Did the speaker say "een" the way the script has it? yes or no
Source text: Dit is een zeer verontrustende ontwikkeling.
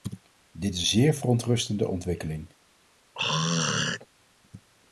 no